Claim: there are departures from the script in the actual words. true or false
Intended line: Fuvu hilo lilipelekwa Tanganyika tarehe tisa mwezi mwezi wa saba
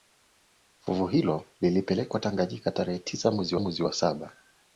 false